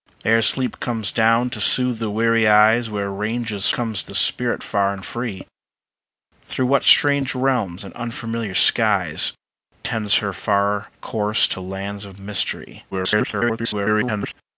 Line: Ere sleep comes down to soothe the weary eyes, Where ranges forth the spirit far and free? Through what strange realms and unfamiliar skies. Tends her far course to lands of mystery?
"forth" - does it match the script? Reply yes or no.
no